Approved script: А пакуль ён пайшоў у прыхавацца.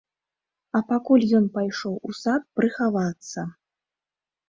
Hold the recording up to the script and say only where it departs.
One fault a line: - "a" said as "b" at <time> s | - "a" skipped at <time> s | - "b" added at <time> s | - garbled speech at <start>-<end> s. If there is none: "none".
- "сад" added at 2.2 s